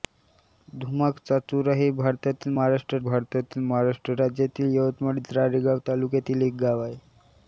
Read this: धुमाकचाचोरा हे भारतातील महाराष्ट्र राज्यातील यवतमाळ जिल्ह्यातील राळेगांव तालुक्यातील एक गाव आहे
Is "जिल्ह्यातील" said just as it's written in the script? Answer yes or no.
no